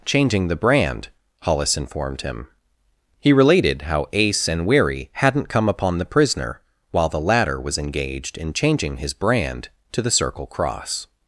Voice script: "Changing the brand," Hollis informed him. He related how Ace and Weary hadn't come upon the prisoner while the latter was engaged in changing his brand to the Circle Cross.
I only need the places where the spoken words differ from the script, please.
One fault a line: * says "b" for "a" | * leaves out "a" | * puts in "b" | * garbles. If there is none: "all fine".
all fine